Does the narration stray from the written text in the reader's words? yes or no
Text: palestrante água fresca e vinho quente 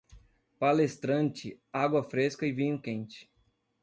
no